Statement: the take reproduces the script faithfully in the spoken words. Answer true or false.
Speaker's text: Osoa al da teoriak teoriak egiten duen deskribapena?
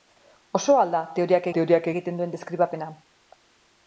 true